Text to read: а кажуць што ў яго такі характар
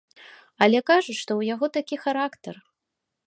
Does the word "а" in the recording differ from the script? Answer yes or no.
yes